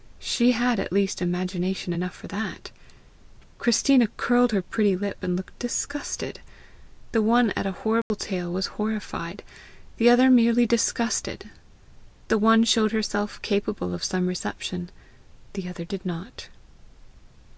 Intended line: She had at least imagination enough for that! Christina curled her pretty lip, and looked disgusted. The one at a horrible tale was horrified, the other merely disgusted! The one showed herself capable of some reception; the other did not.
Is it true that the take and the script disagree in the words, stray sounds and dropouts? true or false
true